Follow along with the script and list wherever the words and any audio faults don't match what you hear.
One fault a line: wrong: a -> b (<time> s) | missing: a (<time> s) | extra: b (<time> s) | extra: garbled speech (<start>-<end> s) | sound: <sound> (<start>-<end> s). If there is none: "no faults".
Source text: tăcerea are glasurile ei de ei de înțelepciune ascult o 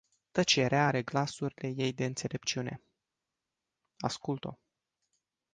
missing: ei de (2.0 s)